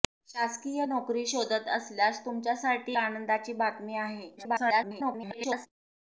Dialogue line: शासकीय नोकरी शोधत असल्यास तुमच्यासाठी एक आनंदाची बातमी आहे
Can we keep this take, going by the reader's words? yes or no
no